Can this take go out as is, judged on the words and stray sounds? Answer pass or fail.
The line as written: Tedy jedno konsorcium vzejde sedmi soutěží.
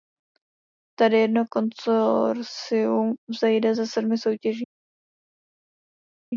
fail